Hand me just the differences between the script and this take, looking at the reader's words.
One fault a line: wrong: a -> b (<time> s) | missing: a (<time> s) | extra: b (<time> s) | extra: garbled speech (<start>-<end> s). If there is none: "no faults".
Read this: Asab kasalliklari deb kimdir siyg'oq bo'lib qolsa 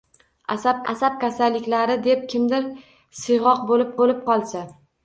extra: asab (0.9 s)
extra: bo'lib (4.0 s)